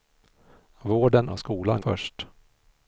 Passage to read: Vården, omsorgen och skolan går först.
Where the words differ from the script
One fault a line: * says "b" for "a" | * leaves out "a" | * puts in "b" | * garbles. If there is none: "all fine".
* leaves out "omsorgen"
* leaves out "går"